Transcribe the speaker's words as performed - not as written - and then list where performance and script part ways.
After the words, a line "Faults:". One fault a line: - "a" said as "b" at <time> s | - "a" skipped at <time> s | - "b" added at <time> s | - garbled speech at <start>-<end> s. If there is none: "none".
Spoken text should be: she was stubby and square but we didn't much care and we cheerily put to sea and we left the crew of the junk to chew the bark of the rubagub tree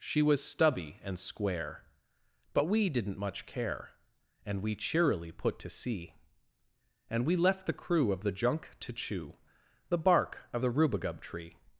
she was stubby and square but we didn't much care and we cheerily put to sea and we left the crew of the junk to chew the bark of the rubagub tree
Faults:
none